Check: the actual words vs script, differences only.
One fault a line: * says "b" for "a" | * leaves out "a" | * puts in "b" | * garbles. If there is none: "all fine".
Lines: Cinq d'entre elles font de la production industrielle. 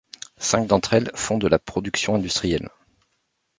all fine